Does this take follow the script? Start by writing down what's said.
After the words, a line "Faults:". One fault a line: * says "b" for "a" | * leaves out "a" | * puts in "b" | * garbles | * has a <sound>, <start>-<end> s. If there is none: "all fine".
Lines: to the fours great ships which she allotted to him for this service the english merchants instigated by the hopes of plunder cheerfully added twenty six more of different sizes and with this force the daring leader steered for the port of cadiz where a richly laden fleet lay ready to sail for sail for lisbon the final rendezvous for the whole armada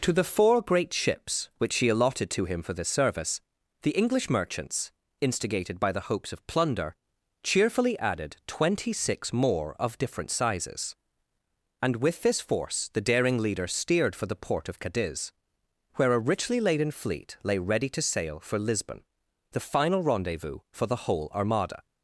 to the four great ships which she allotted to him for this service the english merchants instigated by the hopes of plunder cheerfully added twenty six more of different sizes and with this force the daring leader steered for the port of cadiz where a richly laden fleet lay ready to sail for lisbon the final rendezvous for the whole armada
Faults:
* says "four" for "fours"
* leaves out "sail for"